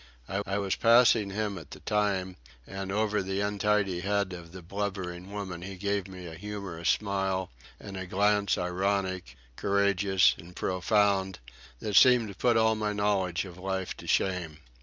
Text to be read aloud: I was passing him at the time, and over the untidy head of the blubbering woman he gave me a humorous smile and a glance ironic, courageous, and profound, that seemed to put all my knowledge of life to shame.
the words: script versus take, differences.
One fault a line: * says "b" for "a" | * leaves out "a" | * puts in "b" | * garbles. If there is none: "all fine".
* puts in "I"